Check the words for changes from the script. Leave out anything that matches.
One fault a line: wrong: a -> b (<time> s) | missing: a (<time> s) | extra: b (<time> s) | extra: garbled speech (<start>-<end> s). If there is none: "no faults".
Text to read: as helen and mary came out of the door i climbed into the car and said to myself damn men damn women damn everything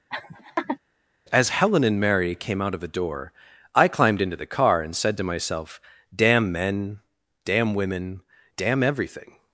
no faults